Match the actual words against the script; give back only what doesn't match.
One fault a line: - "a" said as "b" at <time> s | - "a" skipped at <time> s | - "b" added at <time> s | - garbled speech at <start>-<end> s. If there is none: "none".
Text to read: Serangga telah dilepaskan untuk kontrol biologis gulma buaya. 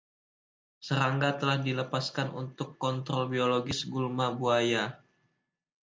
none